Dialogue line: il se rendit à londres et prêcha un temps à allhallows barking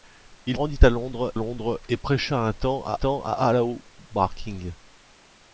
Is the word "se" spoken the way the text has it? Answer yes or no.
no